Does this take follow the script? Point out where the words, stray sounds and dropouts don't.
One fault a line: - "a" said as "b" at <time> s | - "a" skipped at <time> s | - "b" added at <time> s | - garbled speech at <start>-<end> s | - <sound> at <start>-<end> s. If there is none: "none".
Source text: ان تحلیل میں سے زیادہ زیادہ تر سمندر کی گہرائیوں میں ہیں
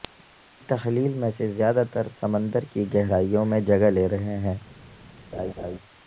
- "زیادہ" skipped at 1.8 s
- "جگہ لے رہے" added at 3.6 s
- laugh at 5.3-5.8 s